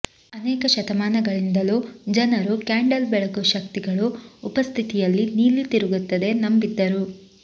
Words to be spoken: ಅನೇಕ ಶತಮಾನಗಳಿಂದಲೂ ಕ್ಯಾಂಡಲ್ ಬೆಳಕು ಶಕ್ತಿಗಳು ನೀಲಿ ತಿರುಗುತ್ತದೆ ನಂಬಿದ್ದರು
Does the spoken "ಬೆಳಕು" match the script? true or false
true